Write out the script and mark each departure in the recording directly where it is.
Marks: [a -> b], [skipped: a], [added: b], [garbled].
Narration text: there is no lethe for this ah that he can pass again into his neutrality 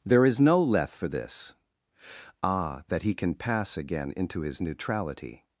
there is no lethe for this ah that he can pass again into his neutrality